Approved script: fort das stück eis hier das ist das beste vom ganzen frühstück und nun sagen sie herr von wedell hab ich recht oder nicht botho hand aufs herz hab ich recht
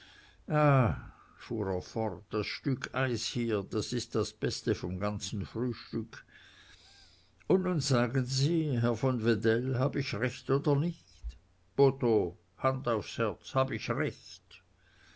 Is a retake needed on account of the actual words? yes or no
no